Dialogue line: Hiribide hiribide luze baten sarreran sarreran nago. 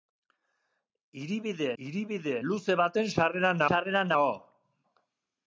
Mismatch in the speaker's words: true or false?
false